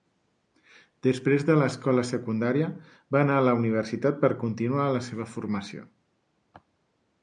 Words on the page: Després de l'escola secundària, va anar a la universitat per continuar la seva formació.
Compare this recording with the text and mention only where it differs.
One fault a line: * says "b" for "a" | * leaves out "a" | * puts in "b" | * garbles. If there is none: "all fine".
all fine